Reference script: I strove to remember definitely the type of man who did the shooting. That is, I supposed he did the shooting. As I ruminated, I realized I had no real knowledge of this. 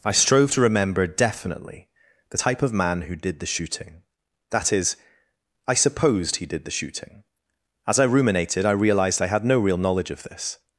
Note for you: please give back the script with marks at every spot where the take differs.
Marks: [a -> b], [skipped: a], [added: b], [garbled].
I strove to remember definitely the type of man who did the shooting. That is, I supposed he did the shooting. As I ruminated, I realized I had no real knowledge of this.